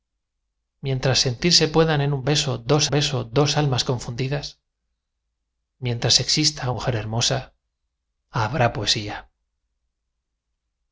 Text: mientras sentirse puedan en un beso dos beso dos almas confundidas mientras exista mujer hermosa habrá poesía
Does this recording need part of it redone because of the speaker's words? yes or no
no